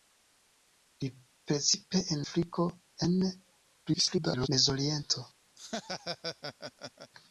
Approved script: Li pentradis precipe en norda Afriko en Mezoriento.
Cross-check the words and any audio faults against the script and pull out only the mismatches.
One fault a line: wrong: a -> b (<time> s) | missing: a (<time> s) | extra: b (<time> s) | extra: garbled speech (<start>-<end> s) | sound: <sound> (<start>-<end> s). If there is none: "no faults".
missing: pentradis (1.1 s)
missing: norda (2.2 s)
extra: garbled speech (3.9-4.5 s)
sound: laugh (5.6-7.1 s)